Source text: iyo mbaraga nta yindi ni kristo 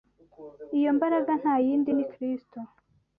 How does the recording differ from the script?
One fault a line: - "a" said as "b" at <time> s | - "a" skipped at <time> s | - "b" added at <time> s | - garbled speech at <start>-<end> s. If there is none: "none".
none